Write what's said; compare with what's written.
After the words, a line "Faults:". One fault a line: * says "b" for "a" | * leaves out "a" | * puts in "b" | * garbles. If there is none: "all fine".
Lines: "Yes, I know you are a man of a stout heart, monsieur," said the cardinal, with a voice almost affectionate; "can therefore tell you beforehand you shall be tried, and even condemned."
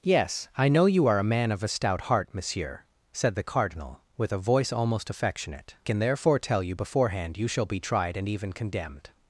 "Yes, I know you are a man of a stout heart, monsieur," said the cardinal, with a voice almost affectionate; "can therefore tell you beforehand you shall be tried, and even condemned."
Faults:
all fine